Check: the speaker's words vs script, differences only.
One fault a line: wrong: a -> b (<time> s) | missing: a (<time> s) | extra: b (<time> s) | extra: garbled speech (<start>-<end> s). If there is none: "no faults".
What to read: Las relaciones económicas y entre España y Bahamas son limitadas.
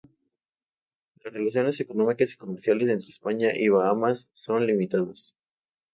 extra: comerciales (2.4 s)